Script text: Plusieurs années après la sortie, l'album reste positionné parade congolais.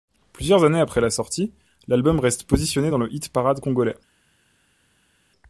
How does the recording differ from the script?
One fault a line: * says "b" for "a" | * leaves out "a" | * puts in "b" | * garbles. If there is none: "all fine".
* puts in "dans le hit"